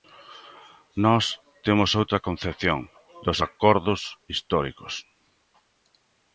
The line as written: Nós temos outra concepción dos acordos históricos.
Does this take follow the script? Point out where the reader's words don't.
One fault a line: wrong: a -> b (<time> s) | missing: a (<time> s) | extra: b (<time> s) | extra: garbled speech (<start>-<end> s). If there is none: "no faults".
no faults